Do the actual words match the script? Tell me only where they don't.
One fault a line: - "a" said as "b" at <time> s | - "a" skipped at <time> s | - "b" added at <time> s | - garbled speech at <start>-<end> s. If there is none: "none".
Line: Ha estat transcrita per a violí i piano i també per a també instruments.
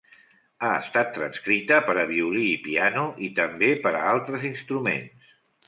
- "també" said as "altres" at 4.2 s